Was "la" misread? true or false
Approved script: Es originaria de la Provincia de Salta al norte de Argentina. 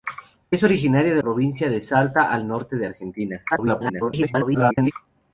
true